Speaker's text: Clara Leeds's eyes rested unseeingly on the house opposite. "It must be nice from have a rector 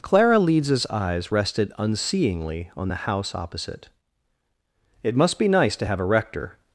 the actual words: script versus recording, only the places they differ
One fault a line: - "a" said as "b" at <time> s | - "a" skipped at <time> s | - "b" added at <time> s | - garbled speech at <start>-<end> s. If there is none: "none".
- "from" said as "to" at 5.8 s